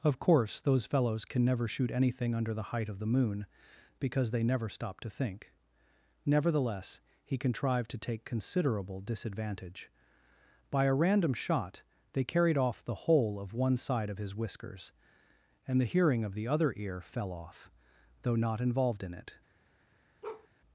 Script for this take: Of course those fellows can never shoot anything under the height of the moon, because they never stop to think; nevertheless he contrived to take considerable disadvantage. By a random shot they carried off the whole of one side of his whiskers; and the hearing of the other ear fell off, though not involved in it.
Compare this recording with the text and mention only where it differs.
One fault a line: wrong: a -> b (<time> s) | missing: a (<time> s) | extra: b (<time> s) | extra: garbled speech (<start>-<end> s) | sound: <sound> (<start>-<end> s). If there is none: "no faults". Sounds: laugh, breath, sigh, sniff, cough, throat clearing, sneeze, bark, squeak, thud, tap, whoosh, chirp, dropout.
sound: bark (20.2-20.5 s)